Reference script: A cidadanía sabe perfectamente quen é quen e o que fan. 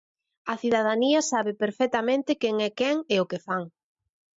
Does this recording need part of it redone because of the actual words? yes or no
no